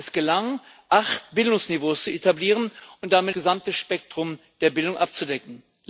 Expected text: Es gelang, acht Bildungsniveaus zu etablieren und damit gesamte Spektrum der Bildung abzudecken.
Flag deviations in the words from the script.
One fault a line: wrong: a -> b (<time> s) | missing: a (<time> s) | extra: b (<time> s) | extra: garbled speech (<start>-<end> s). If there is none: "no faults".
no faults